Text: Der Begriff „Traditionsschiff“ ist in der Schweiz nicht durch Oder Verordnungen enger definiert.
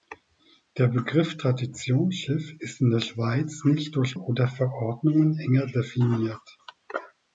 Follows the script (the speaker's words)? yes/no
yes